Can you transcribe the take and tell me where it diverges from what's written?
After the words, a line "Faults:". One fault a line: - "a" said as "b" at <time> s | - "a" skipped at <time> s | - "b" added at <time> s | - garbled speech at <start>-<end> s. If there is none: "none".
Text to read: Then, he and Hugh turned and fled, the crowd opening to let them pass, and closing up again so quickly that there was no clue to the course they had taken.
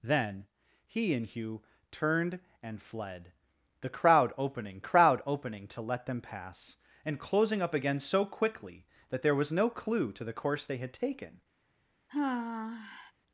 Then, he and Hugh turned and fled, the crowd opening crowd opening to let them pass, and closing up again so quickly that there was no clue to the course they had taken.
Faults:
- "crowd opening" added at 4.8 s